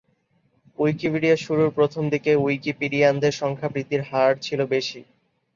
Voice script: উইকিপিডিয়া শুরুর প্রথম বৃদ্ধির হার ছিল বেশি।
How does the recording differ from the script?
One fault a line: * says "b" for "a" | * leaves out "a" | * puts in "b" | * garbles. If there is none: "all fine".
* puts in "দিকে উইকিপিডিয়ানদের সংখ্যা"